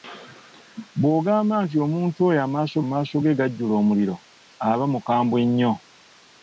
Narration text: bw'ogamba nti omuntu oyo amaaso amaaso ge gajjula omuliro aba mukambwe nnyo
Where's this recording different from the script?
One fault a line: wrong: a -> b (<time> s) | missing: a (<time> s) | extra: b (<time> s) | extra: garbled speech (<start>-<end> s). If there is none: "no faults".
no faults